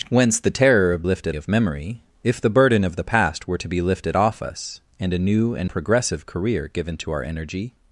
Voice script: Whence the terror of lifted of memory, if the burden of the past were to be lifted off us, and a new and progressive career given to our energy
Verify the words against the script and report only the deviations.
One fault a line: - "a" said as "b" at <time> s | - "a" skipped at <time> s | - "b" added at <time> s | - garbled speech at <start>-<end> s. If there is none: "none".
none